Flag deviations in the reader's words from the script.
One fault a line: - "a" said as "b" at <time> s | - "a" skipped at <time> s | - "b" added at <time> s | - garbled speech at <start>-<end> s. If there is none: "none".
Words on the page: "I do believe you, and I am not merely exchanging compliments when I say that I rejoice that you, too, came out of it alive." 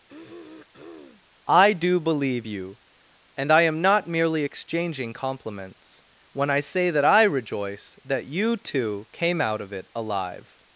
none